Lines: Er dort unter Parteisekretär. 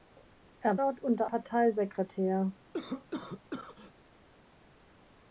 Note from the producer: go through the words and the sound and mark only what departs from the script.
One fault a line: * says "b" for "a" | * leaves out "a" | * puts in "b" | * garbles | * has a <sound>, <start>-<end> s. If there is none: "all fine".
* has a cough, 2.7-3.9 s